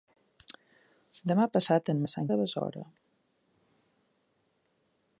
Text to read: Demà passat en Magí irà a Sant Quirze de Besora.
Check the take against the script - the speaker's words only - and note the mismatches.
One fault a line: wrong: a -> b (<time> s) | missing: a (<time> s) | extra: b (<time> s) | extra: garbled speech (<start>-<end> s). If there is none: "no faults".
missing: Magí irà (2.0 s)
missing: Quirze (2.3 s)